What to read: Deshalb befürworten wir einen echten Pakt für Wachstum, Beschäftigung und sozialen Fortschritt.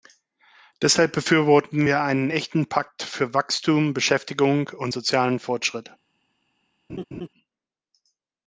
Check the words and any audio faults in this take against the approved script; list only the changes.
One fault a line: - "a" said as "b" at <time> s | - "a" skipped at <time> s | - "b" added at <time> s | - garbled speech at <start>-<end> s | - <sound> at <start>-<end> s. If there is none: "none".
- laugh at 6.9-7.3 s